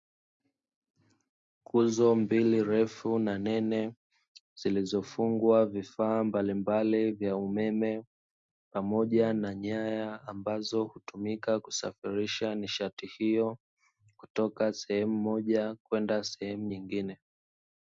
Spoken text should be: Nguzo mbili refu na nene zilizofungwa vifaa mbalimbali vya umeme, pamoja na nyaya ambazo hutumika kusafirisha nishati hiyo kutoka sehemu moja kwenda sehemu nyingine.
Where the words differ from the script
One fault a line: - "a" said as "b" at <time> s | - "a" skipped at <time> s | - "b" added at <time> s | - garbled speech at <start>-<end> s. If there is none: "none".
none